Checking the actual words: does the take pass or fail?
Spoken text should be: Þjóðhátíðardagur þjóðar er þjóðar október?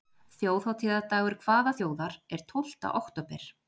fail